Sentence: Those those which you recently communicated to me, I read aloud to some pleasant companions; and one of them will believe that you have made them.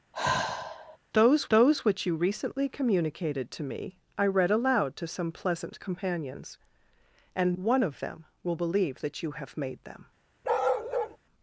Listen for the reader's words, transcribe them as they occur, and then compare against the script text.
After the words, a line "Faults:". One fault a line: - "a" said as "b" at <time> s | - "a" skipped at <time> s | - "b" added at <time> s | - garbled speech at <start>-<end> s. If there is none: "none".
Those those which you recently communicated to me, I read aloud to some pleasant companions; and one of them will believe that you have made them.
Faults:
none